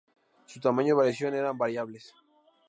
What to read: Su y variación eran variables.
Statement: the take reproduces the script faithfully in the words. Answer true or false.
false